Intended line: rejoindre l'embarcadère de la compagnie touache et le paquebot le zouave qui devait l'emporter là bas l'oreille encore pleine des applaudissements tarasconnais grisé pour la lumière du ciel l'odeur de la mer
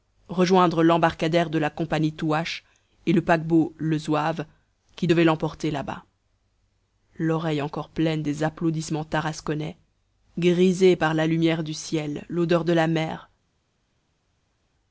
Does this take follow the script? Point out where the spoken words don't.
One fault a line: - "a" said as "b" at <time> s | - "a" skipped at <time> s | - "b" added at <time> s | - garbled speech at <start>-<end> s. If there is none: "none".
- "pour" said as "par" at 10.9 s